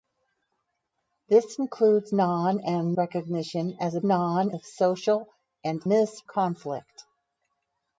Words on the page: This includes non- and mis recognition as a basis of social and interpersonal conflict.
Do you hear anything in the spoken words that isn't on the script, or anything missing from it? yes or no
yes